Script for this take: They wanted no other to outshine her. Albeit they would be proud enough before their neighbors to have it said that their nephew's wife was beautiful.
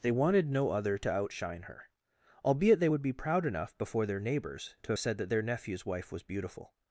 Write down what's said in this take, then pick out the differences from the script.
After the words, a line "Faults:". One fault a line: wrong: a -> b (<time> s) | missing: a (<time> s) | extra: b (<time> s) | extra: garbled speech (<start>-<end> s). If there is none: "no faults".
They wanted no other to outshine her. Albeit they would be proud enough before their neighbors to have said that their nephew's wife was beautiful.
Faults:
missing: it (5.0 s)